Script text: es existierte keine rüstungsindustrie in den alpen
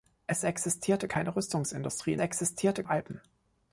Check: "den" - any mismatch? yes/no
yes